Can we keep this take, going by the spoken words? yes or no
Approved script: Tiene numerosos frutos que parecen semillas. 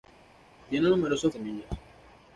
no